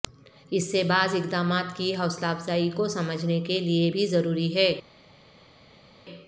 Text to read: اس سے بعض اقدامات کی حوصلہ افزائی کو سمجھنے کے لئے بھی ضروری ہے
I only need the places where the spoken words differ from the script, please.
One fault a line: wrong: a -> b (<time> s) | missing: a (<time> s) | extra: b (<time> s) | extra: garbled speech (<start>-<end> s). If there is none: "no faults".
no faults